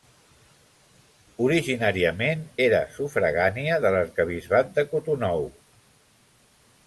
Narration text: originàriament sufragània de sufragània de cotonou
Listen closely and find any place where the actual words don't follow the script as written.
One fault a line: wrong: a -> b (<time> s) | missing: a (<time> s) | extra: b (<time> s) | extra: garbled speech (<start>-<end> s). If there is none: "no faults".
extra: era (2.6 s)
wrong: sufragània -> l'arquebisbat (4.0 s)